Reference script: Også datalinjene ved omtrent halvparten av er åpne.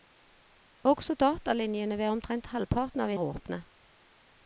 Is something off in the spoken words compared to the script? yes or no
no